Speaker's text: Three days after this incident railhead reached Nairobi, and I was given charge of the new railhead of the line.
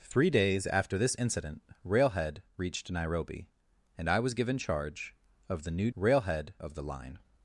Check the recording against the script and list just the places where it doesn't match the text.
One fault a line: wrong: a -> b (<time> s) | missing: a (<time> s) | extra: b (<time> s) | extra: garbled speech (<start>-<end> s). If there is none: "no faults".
no faults